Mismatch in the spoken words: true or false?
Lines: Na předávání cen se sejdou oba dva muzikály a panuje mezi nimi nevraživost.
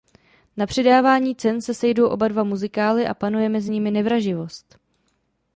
false